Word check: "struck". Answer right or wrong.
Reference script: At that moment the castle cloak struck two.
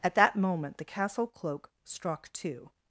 right